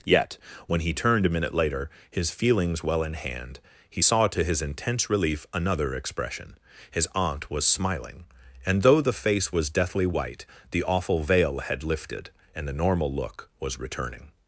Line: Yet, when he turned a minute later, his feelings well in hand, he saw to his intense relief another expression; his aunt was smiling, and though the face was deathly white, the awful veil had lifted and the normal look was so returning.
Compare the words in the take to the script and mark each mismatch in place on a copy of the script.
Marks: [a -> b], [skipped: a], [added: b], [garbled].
Yet, when he turned a minute later, his feelings well in hand, he saw to his intense relief another expression; his aunt was smiling, and though the face was deathly white, the awful veil had lifted and the normal look was [skipped: so] returning.